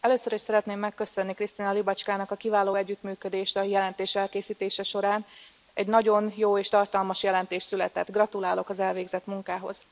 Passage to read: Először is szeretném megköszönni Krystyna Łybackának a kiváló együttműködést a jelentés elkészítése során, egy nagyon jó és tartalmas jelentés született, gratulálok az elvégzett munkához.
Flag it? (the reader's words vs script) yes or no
no